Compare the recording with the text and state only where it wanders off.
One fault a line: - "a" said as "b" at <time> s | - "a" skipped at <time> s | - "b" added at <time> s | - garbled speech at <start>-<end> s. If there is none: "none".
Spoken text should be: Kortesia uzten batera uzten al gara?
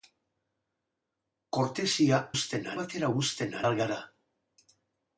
none